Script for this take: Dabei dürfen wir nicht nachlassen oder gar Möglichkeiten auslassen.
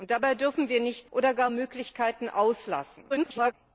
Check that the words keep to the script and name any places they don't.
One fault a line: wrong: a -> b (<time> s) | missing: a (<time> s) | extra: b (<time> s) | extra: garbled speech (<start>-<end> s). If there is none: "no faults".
missing: nachlassen (1.1 s)
extra: garbled speech (3.1-3.5 s)